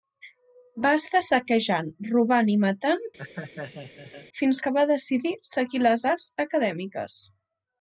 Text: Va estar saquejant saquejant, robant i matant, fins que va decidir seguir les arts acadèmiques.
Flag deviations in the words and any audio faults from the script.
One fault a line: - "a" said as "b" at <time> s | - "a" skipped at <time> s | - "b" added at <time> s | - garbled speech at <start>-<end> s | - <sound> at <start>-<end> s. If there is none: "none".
- "saquejant" skipped at 1.9 s
- laugh at 3.2-4.3 s